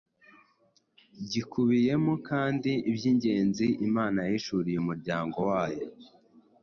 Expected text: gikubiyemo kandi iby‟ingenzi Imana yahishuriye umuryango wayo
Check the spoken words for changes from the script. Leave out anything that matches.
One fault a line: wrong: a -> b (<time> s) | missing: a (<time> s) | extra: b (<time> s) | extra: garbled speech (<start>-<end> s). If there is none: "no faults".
no faults